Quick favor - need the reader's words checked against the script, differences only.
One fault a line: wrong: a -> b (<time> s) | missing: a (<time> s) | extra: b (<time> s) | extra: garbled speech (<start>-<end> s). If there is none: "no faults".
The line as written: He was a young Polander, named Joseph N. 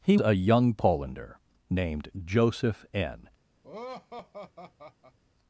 missing: was (0.2 s)